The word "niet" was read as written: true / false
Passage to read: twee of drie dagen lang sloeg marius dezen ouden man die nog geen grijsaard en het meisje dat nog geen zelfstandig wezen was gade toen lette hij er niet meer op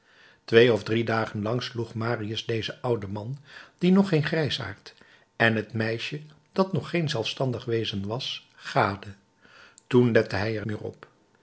false